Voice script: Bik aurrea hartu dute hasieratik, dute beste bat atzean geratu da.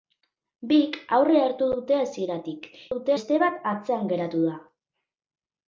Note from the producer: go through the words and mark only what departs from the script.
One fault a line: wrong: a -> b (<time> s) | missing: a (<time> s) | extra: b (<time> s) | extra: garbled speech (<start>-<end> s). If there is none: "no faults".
no faults